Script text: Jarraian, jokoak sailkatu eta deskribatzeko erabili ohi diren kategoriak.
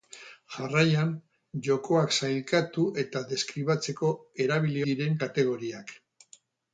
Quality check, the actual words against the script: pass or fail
fail